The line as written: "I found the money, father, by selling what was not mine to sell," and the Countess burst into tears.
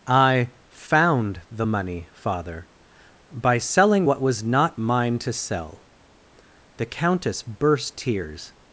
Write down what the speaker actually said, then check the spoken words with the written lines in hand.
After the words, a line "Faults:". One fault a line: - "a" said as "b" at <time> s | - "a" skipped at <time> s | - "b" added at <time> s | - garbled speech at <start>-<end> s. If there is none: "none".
"I found the money, father, by selling what was not mine to sell," the Countess burst tears.
Faults:
- "and" skipped at 5.9 s
- "into" skipped at 8.0 s